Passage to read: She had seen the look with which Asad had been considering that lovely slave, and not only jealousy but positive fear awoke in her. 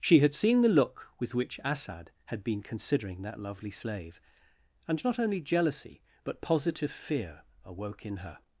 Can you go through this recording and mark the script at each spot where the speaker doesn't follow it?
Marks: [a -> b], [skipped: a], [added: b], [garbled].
She had seen the look with which Asad had been considering that lovely slave, and not only jealousy but positive fear awoke in her.